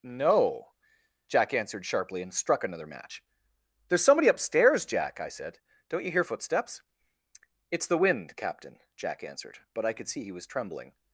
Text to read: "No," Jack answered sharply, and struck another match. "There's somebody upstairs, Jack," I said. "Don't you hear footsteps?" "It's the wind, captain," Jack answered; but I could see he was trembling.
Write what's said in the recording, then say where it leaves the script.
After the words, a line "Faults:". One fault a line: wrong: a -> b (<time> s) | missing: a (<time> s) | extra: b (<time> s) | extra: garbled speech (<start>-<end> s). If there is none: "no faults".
"No," Jack answered sharply, and struck another match. "There's somebody upstairs, Jack," I said. "Don't you hear footsteps?" "It's the wind, captain," Jack answered; but I could see he was trembling.
Faults:
no faults